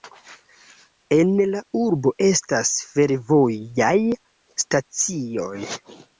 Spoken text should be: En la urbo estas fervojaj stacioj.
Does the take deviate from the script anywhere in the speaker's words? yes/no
no